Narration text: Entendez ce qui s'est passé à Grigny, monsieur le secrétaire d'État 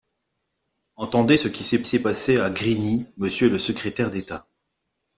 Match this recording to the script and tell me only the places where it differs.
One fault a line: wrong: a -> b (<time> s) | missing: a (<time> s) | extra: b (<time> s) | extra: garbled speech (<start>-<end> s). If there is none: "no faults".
extra: s'est (1.9 s)